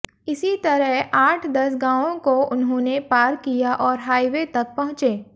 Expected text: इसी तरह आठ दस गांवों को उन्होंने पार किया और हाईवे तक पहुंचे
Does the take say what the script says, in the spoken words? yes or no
yes